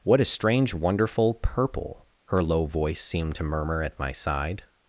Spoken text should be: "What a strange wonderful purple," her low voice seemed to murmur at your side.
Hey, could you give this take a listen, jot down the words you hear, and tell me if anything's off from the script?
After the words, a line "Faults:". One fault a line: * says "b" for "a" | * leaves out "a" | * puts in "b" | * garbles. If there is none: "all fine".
"What a strange wonderful purple," her low voice seemed to murmur at my side.
Faults:
* says "my" for "your"